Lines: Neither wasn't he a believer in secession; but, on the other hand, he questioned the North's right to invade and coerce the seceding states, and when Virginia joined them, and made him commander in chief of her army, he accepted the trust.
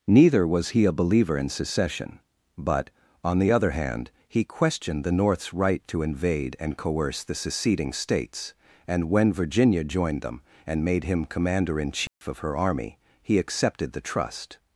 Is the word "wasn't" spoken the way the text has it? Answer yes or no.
no